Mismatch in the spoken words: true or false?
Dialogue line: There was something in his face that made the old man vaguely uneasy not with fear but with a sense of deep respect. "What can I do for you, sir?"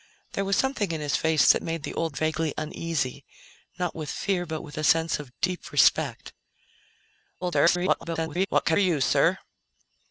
true